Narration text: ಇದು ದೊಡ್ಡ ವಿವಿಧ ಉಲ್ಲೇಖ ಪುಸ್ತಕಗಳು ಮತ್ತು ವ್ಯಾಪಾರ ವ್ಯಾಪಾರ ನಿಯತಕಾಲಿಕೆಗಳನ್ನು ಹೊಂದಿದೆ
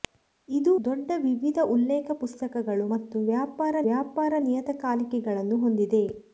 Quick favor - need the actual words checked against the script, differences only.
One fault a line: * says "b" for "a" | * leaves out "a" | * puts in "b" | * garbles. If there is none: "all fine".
all fine